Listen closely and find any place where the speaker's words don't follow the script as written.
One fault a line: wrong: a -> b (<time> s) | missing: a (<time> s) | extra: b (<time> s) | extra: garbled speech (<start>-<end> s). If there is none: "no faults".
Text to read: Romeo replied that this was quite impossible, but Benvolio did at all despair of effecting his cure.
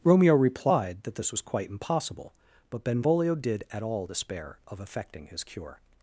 no faults